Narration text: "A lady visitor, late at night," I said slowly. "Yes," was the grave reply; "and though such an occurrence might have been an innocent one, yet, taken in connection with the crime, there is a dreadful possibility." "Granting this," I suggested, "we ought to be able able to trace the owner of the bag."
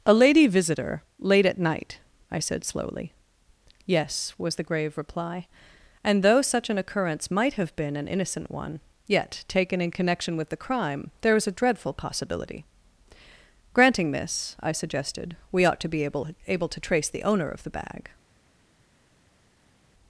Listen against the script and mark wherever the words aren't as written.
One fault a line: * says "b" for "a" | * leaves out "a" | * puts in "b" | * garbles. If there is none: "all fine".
all fine